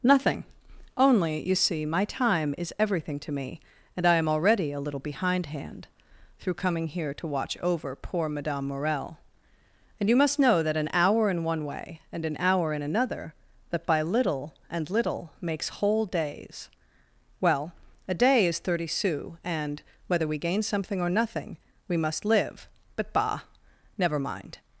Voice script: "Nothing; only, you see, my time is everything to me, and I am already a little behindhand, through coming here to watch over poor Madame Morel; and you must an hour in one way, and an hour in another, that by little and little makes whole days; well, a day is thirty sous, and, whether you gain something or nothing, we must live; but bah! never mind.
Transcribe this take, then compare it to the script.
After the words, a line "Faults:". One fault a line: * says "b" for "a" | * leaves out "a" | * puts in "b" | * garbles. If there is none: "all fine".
"Nothing; only, you see, my time is everything to me, and I am already a little behindhand, through coming here to watch over poor Madame Morel; and you must know that an hour in one way, and an hour in another, that by little and little makes whole days; well, a day is thirty sous, and, whether we gain something or nothing, we must live; but bah! never mind.
Faults:
* puts in "know that"
* says "we" for "you"